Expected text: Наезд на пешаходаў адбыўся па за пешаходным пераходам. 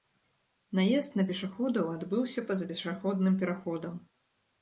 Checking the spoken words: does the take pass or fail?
pass